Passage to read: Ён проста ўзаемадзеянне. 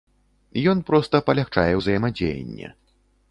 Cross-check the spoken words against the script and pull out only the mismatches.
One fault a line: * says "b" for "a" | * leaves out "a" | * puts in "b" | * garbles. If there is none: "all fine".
* puts in "палягчае"